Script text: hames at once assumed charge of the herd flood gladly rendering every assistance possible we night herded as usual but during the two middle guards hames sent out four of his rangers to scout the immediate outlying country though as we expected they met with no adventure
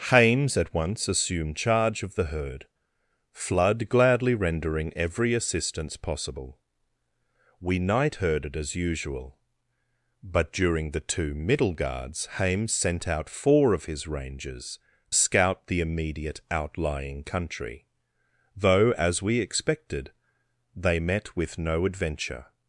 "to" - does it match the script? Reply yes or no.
no